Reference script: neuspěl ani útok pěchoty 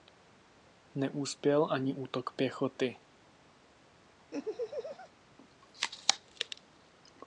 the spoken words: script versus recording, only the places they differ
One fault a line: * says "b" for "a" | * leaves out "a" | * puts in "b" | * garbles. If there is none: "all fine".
all fine